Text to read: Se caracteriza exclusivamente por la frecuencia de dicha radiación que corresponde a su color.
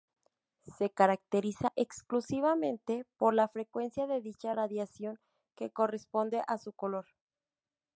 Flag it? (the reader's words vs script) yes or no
no